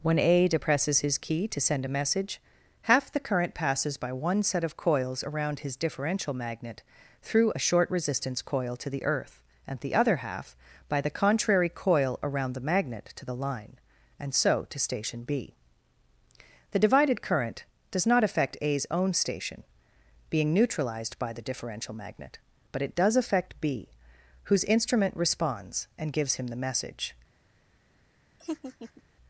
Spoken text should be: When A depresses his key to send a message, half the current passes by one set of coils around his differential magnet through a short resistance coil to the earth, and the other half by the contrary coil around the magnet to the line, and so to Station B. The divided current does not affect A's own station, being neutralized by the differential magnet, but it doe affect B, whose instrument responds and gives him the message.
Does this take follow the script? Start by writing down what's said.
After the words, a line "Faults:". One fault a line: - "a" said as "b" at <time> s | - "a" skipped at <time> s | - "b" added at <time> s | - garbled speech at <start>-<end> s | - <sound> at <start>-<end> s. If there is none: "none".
When A depresses his key to send a message, half the current passes by one set of coils around his differential magnet through a short resistance coil to the earth, and the other half by the contrary coil around the magnet to the line, and so to Station B. The divided current does not affect A's own station, being neutralized by the differential magnet, but it does affect B, whose instrument responds and gives him the message.
Faults:
- "doe" said as "does" at 23.0 s
- laugh at 28.4-29.0 s